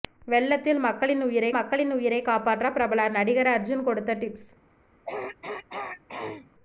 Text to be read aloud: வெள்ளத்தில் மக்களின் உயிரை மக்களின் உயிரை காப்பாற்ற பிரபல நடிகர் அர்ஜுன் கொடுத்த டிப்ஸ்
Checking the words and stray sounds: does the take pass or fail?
fail